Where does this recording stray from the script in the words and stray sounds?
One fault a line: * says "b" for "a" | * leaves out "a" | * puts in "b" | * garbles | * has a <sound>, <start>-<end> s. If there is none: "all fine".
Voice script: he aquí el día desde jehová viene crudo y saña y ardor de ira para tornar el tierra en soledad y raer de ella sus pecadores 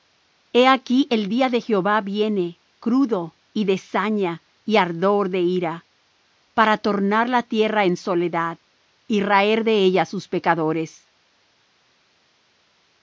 * says "de" for "desde"
* puts in "de"
* says "la" for "el"